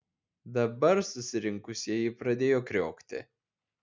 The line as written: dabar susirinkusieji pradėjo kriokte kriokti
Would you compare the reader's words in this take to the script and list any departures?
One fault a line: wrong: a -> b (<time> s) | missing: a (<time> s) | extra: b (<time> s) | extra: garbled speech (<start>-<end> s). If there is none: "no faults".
missing: kriokte (2.6 s)